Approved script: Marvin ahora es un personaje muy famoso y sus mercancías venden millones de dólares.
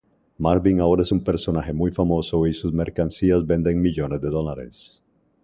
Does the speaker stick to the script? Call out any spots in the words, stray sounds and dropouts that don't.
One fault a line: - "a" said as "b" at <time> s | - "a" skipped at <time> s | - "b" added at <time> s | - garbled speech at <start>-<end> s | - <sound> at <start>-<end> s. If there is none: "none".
none